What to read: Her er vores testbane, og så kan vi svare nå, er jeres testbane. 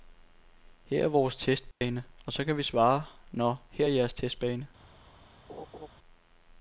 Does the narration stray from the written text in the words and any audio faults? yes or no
yes